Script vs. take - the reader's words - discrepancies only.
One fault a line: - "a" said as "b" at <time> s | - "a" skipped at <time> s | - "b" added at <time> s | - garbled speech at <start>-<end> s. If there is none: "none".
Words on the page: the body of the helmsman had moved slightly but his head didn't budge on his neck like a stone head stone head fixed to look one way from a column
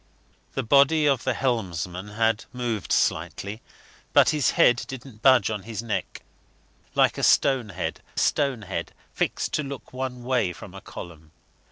none